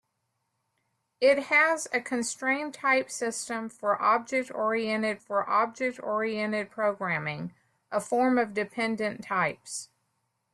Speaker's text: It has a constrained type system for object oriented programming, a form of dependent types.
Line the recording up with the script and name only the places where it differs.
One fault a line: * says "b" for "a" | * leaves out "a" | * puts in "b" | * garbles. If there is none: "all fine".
* puts in "for object oriented"